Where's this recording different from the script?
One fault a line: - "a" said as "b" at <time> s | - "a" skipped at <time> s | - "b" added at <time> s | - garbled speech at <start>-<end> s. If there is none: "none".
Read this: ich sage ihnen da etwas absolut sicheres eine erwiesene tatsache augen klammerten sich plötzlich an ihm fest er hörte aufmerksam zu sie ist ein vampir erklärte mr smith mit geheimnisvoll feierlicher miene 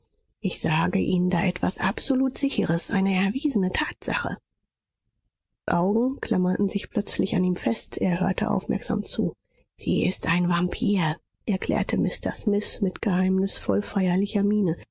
none